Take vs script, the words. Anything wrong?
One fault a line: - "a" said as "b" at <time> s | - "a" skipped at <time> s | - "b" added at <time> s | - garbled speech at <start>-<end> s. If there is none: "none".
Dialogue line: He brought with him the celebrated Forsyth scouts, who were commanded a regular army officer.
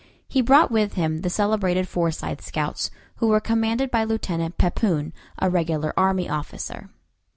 - "by Lieutenant Pepoon" added at 3.9 s